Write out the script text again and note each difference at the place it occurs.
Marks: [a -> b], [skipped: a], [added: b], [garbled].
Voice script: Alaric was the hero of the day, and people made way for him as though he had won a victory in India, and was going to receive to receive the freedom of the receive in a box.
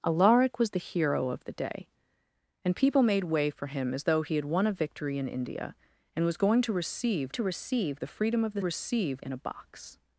Alaric was the hero of the day, and people made way for him as though he had won a victory in India, and was going to receive to receive the freedom of the receive in a box.